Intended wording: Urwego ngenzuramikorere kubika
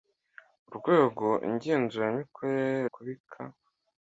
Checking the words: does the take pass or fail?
pass